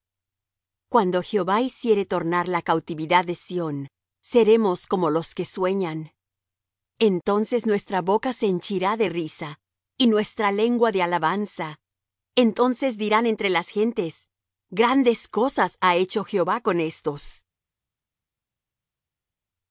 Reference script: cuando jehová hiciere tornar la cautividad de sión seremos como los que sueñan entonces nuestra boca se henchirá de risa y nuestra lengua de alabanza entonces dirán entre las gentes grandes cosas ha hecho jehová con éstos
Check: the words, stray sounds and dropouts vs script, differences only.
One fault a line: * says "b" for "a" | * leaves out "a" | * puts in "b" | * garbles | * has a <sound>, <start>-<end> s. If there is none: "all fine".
all fine